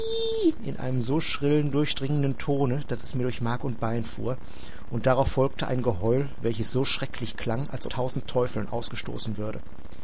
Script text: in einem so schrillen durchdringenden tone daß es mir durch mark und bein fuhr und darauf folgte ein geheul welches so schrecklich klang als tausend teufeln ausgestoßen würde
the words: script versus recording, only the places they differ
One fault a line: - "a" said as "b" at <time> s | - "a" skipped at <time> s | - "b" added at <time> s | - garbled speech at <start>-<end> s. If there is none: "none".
none